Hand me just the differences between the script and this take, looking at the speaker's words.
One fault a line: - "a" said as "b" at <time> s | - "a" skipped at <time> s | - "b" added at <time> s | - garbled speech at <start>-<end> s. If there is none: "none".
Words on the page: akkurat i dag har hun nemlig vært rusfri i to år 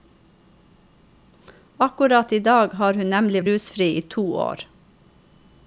- "vært" skipped at 3.4 s